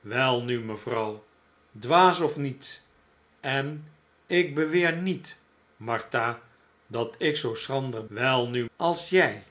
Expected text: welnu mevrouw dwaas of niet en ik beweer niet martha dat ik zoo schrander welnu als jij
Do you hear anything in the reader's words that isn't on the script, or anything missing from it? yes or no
no